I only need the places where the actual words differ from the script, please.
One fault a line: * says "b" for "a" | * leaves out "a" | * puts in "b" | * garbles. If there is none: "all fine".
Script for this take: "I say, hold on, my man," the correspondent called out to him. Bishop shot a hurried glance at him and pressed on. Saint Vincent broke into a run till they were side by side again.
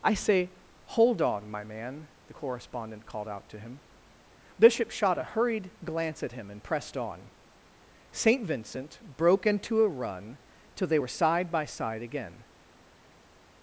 all fine